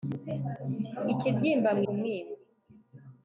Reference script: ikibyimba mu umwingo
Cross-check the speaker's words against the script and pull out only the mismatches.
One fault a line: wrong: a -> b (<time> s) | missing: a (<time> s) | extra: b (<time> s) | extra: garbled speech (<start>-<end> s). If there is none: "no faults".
no faults